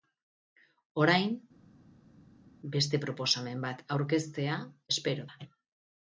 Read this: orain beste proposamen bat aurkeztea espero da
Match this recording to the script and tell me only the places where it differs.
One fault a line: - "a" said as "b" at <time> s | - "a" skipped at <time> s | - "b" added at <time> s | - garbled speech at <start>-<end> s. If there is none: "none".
none